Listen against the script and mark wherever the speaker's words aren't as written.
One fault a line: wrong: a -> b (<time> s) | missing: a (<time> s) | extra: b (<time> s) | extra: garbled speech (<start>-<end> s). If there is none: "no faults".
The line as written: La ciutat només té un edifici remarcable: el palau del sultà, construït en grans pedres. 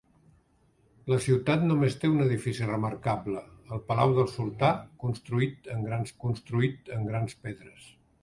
extra: construït en grans (6.3 s)